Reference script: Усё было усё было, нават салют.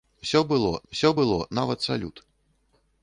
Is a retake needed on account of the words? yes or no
no